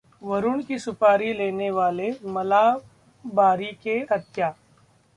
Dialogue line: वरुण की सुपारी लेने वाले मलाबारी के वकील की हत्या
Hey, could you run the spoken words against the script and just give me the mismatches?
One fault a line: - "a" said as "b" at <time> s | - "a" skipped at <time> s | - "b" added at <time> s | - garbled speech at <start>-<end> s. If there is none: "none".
- "वकील की" skipped at 4.0 s